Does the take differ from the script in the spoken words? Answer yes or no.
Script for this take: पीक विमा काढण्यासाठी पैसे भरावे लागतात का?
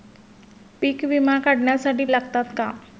yes